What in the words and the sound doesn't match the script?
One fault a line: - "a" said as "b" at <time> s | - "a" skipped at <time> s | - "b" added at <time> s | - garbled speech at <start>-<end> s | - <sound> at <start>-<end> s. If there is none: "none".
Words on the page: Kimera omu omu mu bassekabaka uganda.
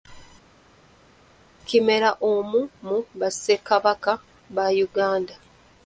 - "omu" skipped at 2.6 s
- "ba" added at 4.6 s